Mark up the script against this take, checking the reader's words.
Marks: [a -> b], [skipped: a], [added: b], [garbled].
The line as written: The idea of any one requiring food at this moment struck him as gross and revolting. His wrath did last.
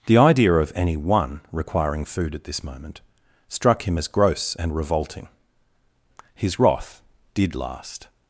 The idea of any one requiring food at this moment struck him as gross and revolting. His wrath did last.